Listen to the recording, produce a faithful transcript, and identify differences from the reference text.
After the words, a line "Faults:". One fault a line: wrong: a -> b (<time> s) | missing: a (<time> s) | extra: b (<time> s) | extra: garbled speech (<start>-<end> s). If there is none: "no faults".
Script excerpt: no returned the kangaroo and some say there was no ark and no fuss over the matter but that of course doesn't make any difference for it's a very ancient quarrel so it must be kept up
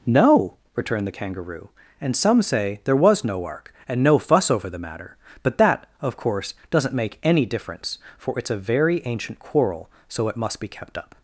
no returned the kangaroo and some say there was no ark and no fuss over the matter but that of course doesn't make any difference for it's a very ancient quarrel so it must be kept up
Faults:
no faults